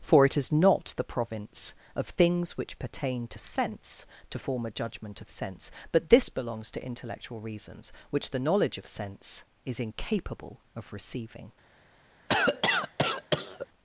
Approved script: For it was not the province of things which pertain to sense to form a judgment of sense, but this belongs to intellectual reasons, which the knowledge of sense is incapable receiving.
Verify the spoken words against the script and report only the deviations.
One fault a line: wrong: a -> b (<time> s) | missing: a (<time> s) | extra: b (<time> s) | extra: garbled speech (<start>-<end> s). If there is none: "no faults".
wrong: was -> is (0.3 s)
extra: of (10.7 s)